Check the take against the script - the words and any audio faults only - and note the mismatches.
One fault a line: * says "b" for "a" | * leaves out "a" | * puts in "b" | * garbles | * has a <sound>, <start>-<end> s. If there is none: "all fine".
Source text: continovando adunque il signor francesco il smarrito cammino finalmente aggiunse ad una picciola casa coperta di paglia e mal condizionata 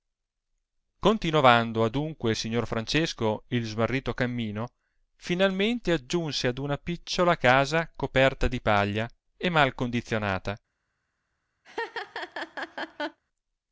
* has a laugh, 11.6-13.2 s